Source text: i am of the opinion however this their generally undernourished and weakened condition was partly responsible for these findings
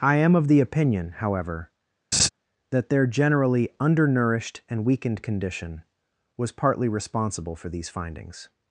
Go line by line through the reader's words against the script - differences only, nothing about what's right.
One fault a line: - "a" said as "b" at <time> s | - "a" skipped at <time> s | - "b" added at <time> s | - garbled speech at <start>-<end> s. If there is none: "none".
- "this" said as "that" at 2.7 s